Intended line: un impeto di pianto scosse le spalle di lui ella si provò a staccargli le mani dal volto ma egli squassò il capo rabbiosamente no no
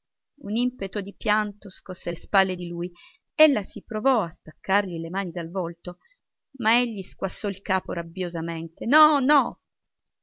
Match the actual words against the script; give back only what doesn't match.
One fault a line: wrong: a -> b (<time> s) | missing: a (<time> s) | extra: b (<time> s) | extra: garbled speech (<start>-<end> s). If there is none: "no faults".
no faults